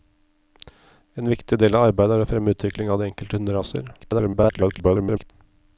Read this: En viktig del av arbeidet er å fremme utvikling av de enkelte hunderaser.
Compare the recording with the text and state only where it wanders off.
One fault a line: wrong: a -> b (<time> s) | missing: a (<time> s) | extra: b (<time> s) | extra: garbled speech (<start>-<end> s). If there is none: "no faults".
extra: garbled speech (4.0-5.3 s)